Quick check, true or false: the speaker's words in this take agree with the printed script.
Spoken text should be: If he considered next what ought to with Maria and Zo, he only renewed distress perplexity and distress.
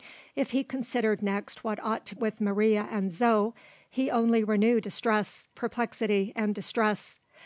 true